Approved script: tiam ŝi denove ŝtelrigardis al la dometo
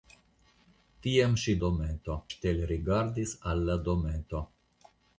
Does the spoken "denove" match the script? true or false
false